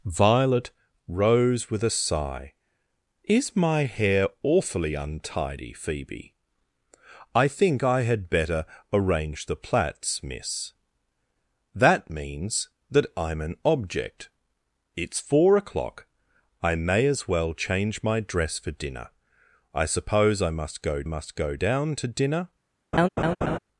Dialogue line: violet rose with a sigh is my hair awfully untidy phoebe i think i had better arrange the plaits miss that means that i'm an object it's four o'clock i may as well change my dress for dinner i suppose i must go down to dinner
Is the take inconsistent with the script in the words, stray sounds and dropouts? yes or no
yes